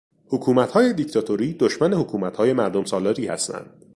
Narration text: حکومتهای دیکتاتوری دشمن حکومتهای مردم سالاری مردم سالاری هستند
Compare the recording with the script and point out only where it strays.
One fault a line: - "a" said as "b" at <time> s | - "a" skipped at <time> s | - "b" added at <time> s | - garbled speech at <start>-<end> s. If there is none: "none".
- "مردم سالاری" skipped at 3.3 s